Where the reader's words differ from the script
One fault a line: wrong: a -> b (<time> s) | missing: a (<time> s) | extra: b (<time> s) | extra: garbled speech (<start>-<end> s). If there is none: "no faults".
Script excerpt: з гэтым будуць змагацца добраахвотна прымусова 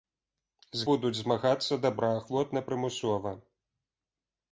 missing: гэтым (0.9 s)